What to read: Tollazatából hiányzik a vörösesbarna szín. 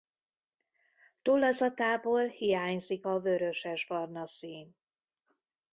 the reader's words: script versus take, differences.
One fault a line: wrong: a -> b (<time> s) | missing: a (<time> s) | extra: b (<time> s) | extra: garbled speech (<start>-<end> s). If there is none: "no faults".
no faults